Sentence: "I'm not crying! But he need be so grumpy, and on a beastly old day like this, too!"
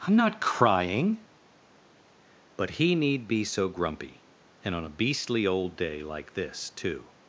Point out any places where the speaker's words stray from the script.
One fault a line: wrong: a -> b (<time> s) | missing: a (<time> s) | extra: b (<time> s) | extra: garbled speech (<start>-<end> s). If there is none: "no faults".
no faults